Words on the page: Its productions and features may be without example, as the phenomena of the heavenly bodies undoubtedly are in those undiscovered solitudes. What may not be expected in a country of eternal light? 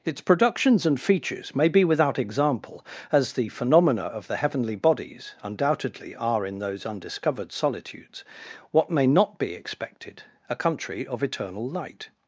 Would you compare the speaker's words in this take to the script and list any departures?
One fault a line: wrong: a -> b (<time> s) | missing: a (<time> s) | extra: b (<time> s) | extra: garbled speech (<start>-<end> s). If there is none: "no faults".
missing: in (10.2 s)